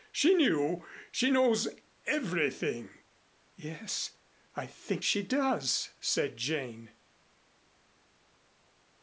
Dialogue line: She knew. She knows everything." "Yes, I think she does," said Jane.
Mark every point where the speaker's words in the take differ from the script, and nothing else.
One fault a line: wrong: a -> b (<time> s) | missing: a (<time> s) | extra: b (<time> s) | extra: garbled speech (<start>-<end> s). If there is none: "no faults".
no faults